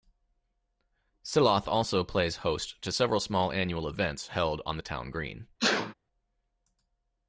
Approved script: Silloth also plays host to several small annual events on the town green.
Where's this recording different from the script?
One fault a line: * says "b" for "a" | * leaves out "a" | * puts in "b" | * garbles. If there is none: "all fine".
* puts in "held"